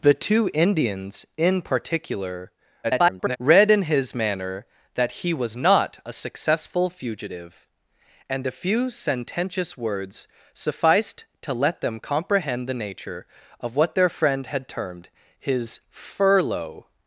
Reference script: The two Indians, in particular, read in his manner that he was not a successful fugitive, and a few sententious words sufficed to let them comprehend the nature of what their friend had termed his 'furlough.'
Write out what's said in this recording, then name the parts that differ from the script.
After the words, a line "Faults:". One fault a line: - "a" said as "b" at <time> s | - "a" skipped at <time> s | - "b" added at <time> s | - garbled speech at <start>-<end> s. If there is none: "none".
The two Indians, in particular, [garbled] read in his manner that he was not a successful fugitive, and a few sententious words sufficed to let them comprehend the nature of what their friend had termed his 'furlough.'
Faults:
- garbled speech at 2.8-3.4 s